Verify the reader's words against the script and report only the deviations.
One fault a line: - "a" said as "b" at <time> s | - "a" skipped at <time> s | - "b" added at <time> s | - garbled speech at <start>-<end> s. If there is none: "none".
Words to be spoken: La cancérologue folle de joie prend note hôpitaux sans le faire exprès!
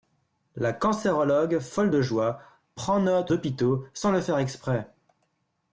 none